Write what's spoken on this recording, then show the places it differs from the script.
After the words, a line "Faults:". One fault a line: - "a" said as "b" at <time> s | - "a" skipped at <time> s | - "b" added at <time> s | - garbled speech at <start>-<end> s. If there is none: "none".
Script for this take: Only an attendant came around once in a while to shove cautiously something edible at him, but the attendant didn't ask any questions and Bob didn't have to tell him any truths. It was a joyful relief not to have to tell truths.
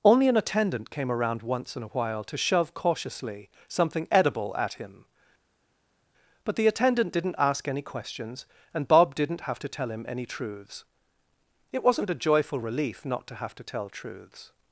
Only an attendant came around once in a while to shove cautiously something edible at him, but the attendant didn't ask any questions and Bob didn't have to tell him any truths. It wasn't a joyful relief not to have to tell truths.
Faults:
- "was" said as "wasn't" at 11.8 s